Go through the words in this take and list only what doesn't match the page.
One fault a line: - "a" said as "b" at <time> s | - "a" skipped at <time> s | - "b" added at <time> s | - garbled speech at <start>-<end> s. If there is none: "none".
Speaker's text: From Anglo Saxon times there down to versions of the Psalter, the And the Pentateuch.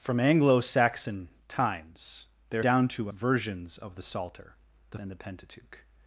none